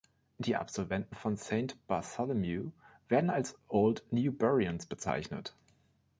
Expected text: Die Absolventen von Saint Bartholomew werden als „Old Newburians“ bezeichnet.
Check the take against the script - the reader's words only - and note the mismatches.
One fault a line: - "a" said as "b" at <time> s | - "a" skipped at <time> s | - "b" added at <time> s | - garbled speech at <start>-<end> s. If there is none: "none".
none